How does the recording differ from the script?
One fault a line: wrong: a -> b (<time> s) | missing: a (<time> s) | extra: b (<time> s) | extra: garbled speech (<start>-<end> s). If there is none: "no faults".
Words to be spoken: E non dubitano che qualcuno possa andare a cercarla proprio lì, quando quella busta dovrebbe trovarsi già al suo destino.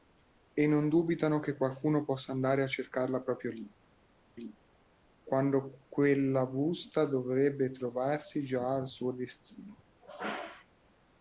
extra: lì (4.4 s)